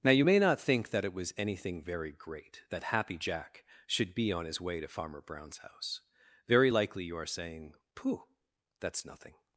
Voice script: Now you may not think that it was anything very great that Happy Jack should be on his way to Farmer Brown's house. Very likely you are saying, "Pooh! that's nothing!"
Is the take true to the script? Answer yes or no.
yes